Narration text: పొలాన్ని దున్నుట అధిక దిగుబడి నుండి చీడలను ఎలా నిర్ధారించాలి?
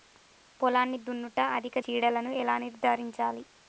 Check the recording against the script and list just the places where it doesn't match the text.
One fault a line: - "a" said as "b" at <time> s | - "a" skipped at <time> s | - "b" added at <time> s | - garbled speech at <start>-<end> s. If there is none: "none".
- "దిగుబడి నుండి" skipped at 1.8 s